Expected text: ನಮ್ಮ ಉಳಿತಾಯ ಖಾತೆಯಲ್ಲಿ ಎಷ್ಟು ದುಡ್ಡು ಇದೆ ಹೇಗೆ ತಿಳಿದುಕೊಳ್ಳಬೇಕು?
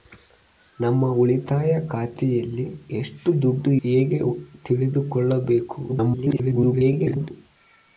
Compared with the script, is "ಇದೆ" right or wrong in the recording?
wrong